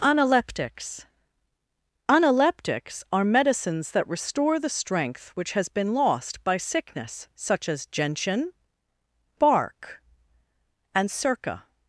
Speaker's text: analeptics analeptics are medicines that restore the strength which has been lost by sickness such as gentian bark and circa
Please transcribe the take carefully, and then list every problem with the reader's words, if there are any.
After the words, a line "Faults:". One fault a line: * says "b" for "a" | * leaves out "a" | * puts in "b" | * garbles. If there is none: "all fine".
analeptics analeptics are medicines that restore the strength which has been lost by sickness such as gentian bark and circa
Faults:
all fine